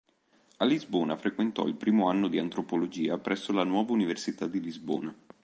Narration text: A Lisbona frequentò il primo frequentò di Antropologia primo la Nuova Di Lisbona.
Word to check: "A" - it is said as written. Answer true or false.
true